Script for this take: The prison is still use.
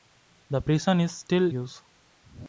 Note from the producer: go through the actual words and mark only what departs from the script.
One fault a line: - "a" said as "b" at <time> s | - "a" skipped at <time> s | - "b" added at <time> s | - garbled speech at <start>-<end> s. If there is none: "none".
none